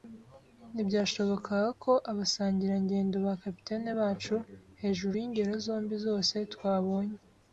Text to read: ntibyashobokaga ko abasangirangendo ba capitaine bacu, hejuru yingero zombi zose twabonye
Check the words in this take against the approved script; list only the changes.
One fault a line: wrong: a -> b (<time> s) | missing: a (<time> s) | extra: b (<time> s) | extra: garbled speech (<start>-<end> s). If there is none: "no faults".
no faults